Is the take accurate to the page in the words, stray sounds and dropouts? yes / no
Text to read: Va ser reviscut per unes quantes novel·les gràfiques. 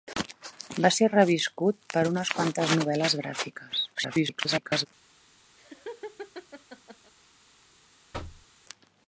no